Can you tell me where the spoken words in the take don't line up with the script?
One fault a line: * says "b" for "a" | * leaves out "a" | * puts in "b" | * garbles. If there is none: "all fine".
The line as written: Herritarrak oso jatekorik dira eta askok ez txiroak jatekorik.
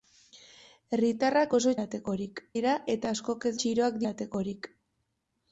all fine